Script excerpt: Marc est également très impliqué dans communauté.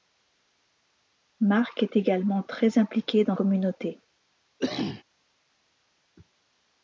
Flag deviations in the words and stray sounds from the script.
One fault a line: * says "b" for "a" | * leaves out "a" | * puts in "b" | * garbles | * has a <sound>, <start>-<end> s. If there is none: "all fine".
* has a cough, 4.6-5.0 s